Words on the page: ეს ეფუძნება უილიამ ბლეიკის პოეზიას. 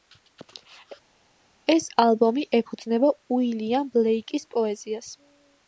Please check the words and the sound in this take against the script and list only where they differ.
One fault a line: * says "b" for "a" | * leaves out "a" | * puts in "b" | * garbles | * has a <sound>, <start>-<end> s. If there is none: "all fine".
* puts in "ალბომი"